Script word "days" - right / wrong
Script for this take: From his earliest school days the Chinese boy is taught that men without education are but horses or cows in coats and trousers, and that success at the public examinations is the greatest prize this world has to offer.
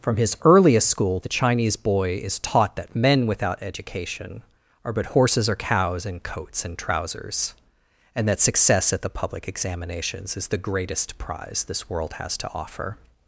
wrong